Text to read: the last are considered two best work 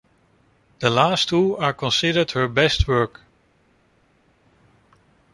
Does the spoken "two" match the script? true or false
false